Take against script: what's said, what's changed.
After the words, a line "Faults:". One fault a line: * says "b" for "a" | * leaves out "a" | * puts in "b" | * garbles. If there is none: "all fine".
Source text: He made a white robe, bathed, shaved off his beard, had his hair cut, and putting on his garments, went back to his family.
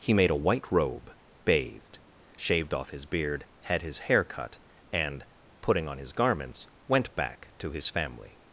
He made a white robe, bathed, shaved off his beard, had his hair cut, and putting on his garments, went back to his family.
Faults:
all fine